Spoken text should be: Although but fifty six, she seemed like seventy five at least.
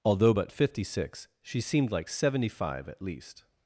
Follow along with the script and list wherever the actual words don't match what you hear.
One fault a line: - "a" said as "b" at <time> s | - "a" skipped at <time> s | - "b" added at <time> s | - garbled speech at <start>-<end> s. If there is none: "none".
none